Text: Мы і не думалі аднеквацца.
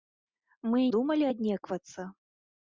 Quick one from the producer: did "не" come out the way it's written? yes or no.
no